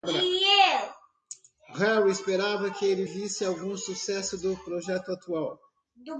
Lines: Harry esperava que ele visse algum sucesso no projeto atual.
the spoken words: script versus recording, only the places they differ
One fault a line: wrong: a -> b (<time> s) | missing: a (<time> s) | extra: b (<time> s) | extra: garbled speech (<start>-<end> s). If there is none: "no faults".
wrong: no -> do (4.4 s)